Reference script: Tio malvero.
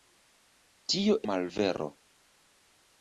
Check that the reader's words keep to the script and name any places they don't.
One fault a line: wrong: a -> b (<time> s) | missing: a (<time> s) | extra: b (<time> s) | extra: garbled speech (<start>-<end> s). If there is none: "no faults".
no faults